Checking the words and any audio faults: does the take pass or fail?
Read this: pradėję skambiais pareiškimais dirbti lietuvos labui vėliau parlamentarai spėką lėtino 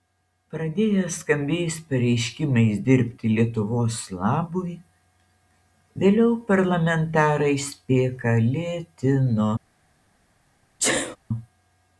fail